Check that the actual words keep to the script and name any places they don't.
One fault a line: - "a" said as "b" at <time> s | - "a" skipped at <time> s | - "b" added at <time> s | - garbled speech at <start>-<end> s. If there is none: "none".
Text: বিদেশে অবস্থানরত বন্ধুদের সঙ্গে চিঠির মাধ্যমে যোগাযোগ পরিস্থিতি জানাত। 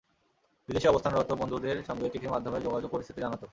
none